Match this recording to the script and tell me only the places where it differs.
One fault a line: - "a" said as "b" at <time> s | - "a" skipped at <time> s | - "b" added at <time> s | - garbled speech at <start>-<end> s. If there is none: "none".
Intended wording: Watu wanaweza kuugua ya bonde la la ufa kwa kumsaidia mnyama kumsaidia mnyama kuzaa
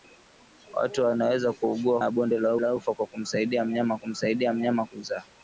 none